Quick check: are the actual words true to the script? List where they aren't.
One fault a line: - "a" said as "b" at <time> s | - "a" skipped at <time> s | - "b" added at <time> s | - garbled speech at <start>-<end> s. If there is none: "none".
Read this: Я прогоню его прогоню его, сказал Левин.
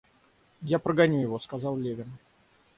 - "прогоню его" skipped at 1.4 s